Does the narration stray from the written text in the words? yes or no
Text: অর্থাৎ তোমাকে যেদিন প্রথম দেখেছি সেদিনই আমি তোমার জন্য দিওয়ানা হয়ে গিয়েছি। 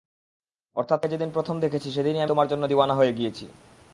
yes